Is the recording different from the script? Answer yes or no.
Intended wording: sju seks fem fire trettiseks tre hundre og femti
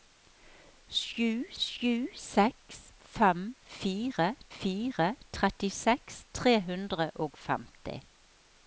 yes